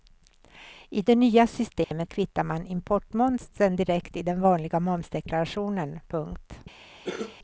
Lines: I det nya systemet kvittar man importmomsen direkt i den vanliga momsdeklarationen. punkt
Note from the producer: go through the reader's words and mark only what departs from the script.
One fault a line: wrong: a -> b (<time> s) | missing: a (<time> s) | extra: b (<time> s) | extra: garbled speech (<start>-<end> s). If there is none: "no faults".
no faults